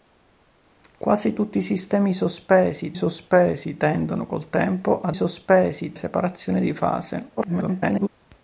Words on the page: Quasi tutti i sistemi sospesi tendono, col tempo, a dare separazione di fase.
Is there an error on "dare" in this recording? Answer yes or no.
yes